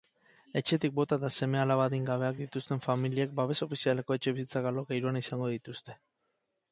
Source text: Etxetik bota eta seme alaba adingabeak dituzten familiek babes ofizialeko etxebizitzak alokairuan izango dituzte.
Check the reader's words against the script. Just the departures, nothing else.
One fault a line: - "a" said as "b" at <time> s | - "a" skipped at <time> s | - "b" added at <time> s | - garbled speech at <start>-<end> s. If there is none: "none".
none